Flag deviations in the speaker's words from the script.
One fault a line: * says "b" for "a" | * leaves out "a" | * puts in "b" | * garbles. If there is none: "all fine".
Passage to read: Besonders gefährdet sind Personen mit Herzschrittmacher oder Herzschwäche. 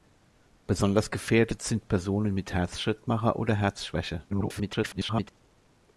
* garbles